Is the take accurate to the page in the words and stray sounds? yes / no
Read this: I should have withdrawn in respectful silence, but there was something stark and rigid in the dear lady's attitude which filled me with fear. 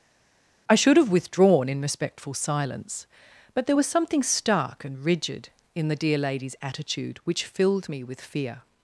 yes